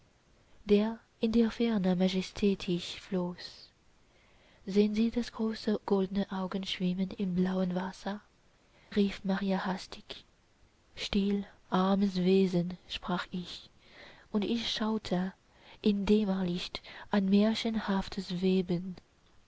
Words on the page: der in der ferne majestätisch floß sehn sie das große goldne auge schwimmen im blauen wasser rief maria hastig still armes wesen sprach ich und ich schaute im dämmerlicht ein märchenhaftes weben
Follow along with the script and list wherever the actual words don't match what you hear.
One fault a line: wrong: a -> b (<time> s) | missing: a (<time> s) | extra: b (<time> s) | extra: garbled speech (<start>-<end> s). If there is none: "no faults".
no faults